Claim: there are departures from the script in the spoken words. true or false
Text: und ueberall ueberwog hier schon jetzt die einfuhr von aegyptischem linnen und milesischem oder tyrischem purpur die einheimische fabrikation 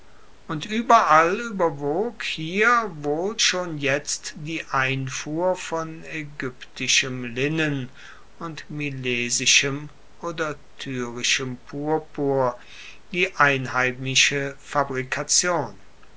true